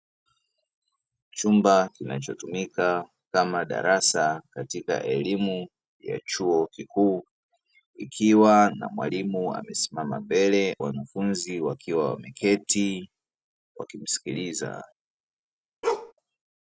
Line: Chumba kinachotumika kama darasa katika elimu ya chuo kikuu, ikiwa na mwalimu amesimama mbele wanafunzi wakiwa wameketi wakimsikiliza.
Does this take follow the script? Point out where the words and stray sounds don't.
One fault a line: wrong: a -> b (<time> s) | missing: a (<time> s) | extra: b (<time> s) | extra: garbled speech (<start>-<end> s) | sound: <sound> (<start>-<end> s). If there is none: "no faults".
sound: bark (15.8-16.1 s)